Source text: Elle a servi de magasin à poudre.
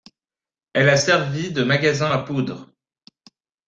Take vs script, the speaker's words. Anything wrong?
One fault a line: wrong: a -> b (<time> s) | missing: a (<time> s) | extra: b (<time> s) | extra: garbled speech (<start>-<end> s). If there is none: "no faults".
no faults